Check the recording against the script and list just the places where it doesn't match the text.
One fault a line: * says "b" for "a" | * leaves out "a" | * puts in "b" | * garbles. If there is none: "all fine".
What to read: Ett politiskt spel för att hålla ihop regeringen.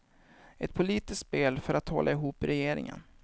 all fine